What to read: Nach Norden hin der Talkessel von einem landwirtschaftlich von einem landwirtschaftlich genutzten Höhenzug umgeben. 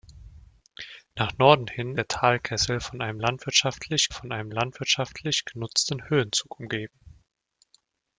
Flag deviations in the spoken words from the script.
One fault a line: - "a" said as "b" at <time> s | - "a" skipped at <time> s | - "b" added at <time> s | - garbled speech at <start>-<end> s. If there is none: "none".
none